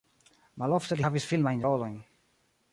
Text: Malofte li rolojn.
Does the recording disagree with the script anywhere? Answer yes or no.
yes